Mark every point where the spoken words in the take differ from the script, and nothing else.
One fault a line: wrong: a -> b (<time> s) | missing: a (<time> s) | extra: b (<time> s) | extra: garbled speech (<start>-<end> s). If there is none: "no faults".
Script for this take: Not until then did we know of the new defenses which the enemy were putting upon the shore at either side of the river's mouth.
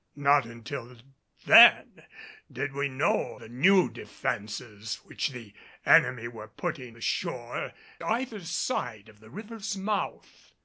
missing: of (3.4 s)
missing: upon (7.0 s)
missing: at (7.7 s)